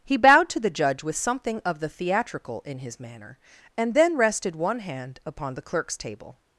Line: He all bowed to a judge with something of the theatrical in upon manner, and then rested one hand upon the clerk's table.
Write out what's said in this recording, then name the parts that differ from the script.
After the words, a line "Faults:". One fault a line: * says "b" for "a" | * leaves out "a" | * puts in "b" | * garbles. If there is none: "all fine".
He bowed to the judge with something of the theatrical in his manner, and then rested one hand upon the clerk's table.
Faults:
* leaves out "all"
* says "the" for "a"
* says "his" for "upon"